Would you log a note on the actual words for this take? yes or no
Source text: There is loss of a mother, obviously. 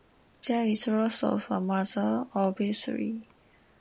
no